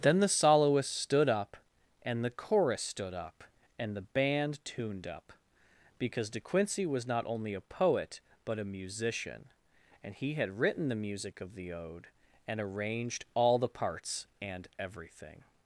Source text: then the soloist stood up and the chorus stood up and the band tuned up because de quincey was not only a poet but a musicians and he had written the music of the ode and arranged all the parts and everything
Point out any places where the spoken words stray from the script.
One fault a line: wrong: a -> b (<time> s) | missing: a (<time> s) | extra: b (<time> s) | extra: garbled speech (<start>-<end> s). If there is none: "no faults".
wrong: musicians -> musician (8.7 s)